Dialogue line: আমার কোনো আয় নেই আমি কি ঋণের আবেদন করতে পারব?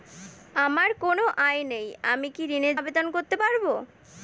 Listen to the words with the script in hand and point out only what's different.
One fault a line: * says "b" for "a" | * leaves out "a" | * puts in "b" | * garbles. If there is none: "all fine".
all fine